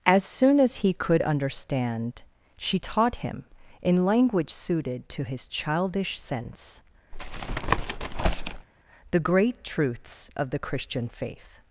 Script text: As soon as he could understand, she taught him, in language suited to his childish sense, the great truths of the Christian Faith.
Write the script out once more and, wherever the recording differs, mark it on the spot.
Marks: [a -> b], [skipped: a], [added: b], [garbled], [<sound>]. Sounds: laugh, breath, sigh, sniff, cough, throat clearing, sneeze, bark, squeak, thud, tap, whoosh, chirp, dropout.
As soon as he could understand, she taught him, in language suited to his childish sense, [tap] the great truths of the Christian Faith.